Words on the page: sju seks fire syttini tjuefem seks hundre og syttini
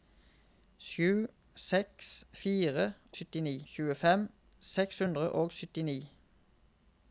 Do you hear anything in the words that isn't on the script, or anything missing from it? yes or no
no